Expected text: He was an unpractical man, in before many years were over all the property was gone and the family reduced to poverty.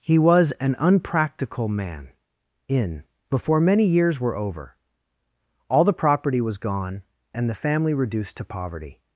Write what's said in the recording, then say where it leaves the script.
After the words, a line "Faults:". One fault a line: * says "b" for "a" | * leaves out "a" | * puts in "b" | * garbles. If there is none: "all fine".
He was an unpractical man, in before many years were over all the property was gone and the family reduced to poverty.
Faults:
all fine